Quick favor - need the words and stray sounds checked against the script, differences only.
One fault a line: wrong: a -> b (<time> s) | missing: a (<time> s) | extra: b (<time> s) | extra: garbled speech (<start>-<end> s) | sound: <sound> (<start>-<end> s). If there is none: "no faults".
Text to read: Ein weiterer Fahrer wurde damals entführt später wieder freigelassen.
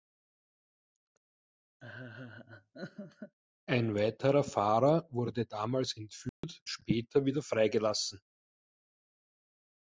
sound: laugh (1.8-3.4 s)
sound: dropout (6.3-6.4 s)